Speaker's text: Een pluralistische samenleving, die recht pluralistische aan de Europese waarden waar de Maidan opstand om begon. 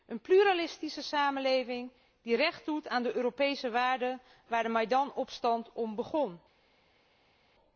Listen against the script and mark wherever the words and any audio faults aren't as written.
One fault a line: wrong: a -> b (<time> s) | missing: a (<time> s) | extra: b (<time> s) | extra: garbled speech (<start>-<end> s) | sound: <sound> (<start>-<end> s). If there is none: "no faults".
wrong: pluralistische -> doet (2.6 s)